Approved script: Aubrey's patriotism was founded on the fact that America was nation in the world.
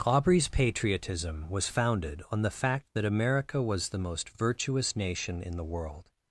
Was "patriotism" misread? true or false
false